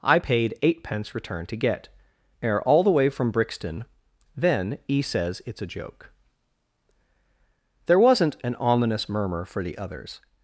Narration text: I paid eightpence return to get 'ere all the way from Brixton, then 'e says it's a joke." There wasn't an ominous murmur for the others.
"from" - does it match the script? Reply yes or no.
yes